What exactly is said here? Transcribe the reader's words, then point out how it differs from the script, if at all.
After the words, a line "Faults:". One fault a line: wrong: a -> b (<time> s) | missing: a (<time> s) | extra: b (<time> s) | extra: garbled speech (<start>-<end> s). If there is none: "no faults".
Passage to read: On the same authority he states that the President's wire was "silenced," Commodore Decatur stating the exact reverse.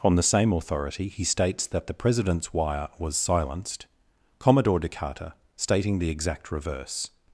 On the same authority he states that the President's wire was "silenced," Commodore Decatur stating the exact reverse.
Faults:
no faults